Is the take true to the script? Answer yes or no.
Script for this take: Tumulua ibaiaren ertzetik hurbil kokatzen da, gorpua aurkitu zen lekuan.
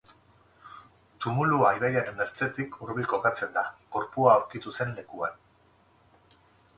yes